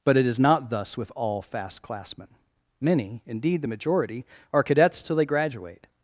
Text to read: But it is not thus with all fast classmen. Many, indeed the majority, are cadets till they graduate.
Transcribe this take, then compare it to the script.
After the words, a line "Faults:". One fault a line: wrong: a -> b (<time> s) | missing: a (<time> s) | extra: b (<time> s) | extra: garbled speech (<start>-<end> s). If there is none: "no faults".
But it is not thus with all fast classmen. Many, indeed the majority, are cadets till they graduate.
Faults:
no faults